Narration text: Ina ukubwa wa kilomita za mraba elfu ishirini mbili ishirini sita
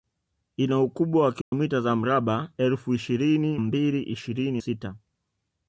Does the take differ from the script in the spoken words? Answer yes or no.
no